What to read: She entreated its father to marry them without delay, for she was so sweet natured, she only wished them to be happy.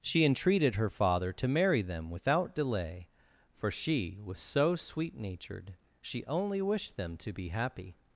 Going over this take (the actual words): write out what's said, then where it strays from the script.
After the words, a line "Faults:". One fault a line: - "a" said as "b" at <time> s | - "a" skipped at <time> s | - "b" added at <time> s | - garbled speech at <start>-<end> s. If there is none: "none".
She entreated her father to marry them without delay, for she was so sweet natured, she only wished them to be happy.
Faults:
- "its" said as "her" at 0.8 s